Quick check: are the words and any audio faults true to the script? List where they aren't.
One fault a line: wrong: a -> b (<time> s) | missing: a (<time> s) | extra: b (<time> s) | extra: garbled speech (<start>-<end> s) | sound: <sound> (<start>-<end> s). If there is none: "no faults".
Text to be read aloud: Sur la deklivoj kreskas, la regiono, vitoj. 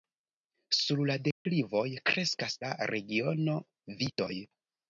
sound: dropout (1.3-1.5 s)